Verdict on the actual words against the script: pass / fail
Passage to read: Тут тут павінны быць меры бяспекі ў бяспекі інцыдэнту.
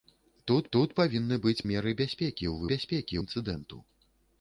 pass